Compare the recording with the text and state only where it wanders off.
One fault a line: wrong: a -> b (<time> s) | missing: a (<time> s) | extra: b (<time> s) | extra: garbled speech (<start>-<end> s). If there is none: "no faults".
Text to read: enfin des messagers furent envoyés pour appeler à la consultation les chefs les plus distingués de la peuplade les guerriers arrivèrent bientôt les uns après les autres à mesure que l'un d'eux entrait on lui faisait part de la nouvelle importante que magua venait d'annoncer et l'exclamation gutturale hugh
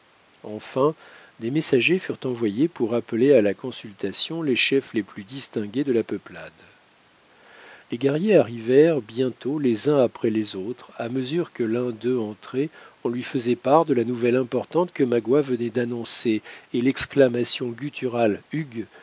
no faults